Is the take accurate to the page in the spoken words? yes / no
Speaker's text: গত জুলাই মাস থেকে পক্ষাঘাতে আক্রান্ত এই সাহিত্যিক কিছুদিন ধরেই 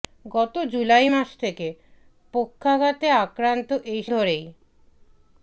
no